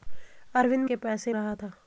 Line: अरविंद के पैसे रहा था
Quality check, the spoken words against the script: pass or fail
pass